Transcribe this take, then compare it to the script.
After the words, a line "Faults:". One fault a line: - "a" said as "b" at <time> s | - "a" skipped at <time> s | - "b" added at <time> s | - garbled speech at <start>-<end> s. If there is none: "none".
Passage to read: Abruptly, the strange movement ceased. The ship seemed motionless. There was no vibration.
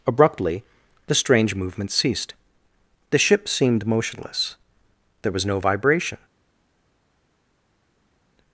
Abruptly, the strange movement ceased. The ship seemed motionless. There was no vibration.
Faults:
none